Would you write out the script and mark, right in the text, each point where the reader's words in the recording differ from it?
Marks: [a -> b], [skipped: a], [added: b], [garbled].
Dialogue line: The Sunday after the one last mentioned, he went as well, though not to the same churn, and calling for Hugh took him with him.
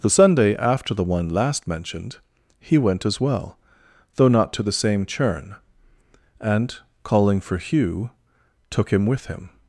The Sunday after the one last mentioned, he went as well, though not to the same churn, and calling for Hugh took him with him.